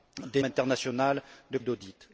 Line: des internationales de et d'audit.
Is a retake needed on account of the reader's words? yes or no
no